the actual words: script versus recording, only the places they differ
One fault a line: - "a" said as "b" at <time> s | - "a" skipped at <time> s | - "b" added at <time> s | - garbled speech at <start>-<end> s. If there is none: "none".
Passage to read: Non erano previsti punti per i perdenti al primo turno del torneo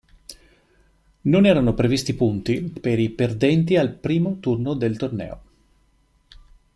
none